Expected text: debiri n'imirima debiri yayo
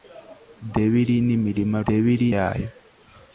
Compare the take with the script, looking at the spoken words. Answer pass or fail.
pass